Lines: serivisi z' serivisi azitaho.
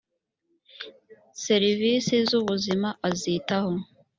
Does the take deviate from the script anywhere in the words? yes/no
yes